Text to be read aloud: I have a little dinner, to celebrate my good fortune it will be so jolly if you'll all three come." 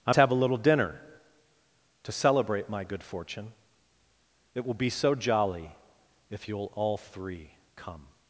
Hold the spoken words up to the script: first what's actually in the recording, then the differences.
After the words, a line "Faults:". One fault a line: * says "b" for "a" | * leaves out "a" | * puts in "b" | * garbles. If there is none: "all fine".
I have a little dinner, to celebrate my good fortune it will be so jolly if you'll all three come."
Faults:
all fine